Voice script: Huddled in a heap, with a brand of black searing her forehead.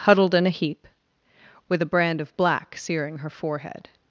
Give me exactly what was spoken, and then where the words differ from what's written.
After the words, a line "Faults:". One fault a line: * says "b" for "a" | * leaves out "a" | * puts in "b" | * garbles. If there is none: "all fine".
Huddled in a heap, with a brand of black searing her forehead.
Faults:
all fine